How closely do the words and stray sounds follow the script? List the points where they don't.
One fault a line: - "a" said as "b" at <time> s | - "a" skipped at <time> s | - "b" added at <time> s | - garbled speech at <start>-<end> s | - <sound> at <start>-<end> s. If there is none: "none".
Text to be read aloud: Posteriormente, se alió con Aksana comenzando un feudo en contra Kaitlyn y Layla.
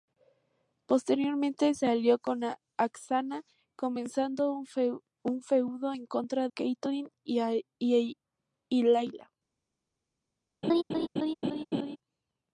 - laugh at 10.6-12.0 s